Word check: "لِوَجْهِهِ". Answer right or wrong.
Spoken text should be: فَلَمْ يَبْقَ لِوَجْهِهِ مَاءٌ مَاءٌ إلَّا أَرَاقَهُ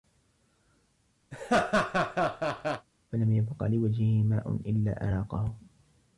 right